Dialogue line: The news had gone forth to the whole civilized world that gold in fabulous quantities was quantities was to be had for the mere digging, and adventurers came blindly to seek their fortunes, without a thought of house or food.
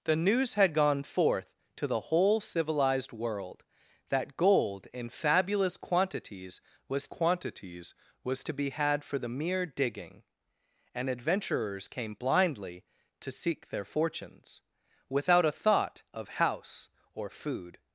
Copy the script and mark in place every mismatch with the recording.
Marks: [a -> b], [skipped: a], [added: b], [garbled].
The news had gone forth to the whole civilized world that gold in fabulous quantities was quantities was to be had for the mere digging, and adventurers came blindly to seek their fortunes, without a thought of house or food.